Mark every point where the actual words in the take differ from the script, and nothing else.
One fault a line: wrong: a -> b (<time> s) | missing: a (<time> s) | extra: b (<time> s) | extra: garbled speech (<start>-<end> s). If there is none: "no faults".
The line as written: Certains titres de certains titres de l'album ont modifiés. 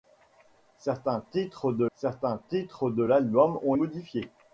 no faults